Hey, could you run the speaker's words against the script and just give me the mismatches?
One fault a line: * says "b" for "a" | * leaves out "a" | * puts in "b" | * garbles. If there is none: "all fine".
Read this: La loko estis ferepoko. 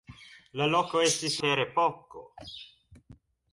all fine